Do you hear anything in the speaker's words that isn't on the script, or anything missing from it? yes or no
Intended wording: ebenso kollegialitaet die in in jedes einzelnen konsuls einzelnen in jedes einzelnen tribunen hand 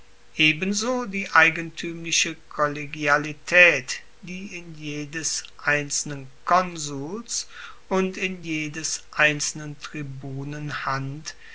yes